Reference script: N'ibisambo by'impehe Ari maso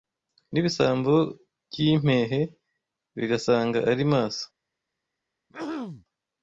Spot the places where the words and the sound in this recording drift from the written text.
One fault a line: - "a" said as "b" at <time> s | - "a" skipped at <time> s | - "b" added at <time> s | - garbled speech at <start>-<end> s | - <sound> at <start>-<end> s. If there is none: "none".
- "Bigasanga" added at 3.2 s
- throat clearing at 5.5-6.1 s